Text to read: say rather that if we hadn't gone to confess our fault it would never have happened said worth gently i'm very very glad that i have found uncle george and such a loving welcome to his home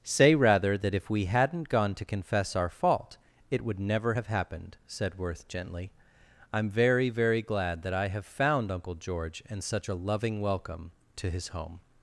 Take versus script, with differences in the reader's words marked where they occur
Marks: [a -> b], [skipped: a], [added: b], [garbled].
say rather that if we hadn't gone to confess our fault it would never have happened said worth gently i'm very very glad that i have found uncle george and such a loving welcome to his home